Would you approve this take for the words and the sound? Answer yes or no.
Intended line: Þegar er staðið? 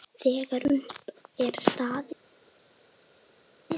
no